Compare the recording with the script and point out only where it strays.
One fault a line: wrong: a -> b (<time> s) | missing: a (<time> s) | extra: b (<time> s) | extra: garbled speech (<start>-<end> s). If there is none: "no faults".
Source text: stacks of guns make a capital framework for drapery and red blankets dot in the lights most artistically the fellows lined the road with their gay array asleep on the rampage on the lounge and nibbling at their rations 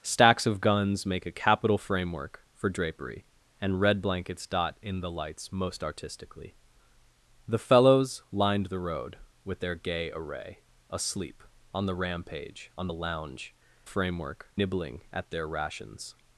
wrong: and -> framework (13.8 s)